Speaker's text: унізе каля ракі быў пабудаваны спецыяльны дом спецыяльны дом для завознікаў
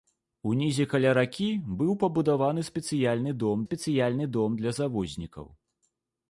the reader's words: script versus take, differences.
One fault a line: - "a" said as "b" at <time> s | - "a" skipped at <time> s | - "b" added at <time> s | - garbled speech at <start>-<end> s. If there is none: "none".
none